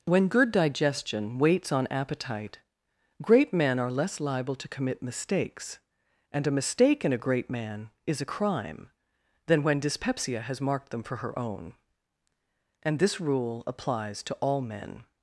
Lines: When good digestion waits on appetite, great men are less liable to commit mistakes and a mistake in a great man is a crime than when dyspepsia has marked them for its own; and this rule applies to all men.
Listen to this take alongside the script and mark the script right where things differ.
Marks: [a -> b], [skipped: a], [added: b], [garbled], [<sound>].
When good digestion waits on appetite, great men are less liable to commit mistakes and a mistake in a great man is a crime than when dyspepsia has marked them for [its -> her] own; and this rule applies to all men.